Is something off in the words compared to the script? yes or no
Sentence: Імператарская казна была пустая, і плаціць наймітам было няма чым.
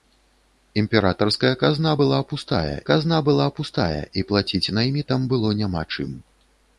yes